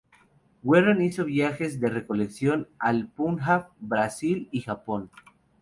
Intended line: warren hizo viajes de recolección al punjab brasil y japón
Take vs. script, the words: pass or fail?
pass